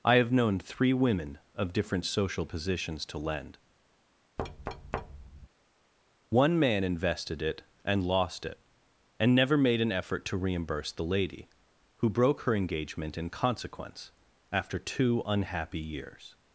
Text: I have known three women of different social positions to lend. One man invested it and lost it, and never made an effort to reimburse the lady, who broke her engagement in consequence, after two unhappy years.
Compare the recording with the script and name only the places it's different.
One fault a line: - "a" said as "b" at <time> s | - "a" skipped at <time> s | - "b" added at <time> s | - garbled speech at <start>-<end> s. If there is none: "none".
none